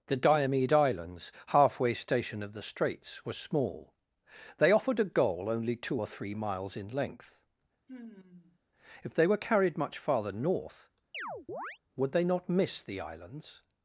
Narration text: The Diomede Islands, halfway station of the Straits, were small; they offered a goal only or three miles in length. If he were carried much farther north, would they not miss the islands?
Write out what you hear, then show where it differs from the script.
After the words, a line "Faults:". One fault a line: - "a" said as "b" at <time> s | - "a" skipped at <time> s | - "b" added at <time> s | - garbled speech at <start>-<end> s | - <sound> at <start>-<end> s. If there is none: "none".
The Diomede Islands, halfway station of the Straits, were small; they offered a goal only two or three miles in length. If they were carried much farther north, would they not miss the islands?
Faults:
- "two" added at 5.8 s
- sigh at 7.9-8.6 s
- "he" said as "they" at 9.1 s
- chirp at 11.1-11.8 s